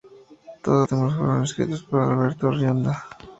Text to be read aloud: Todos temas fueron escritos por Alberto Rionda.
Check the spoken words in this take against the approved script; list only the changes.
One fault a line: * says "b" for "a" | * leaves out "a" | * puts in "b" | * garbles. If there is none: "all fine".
all fine